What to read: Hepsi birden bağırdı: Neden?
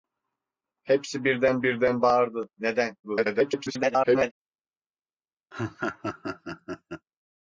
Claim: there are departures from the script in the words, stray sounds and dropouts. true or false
true